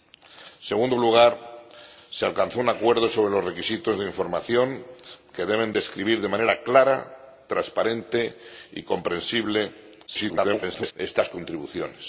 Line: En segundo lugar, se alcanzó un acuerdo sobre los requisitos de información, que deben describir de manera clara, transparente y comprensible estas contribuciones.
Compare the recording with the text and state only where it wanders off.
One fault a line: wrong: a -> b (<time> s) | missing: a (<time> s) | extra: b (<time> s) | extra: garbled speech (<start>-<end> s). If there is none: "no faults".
extra: garbled speech (10.1-10.9 s)